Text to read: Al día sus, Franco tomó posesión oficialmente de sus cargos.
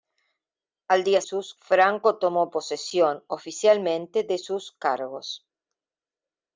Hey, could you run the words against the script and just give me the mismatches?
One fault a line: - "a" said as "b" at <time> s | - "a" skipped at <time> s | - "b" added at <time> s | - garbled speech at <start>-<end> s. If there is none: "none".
none